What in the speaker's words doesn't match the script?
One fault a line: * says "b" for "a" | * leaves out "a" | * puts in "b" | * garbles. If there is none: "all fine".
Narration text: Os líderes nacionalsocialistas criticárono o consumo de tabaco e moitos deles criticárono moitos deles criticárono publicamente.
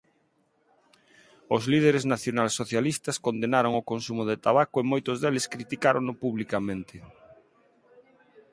* says "condenaron" for "criticárono"
* leaves out "moitos deles criticárono"